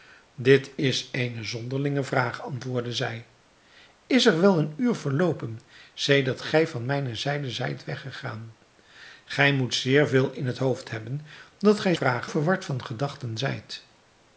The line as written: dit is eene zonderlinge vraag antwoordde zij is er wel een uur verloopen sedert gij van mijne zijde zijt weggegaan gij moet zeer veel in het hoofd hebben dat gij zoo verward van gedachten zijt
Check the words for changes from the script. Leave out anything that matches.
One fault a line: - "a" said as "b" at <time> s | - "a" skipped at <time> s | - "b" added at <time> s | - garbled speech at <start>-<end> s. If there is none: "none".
- "zoo" said as "vraag" at 11.9 s